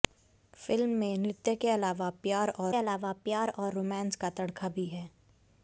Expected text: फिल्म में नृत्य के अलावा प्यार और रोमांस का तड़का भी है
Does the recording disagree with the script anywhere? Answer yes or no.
yes